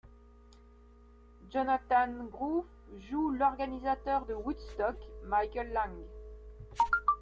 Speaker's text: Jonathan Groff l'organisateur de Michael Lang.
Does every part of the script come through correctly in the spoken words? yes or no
no